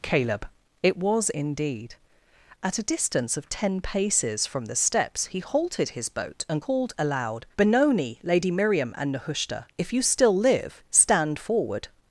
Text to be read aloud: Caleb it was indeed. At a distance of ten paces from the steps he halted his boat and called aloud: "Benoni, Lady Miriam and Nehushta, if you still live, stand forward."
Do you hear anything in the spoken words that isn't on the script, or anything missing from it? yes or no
no